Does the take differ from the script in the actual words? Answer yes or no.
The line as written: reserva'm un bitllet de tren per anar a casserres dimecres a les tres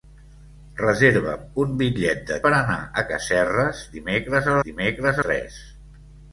yes